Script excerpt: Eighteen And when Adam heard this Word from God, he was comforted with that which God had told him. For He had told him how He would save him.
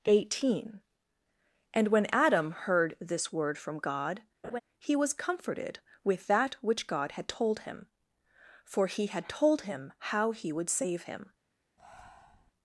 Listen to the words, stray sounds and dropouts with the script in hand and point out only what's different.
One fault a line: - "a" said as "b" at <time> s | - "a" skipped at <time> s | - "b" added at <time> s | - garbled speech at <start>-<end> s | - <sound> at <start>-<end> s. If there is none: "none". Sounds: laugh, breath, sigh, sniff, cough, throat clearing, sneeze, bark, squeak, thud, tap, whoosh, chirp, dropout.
- laugh at 4.4-4.6 s
- breath at 11.8-12.5 s